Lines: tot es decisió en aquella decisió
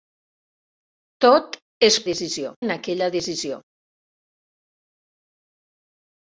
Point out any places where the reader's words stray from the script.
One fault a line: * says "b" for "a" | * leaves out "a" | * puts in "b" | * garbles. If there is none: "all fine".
all fine